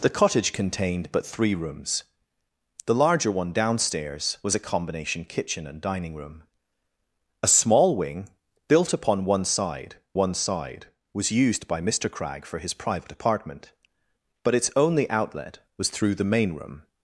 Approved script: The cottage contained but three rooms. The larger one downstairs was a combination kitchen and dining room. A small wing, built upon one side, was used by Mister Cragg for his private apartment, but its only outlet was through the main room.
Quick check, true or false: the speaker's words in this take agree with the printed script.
false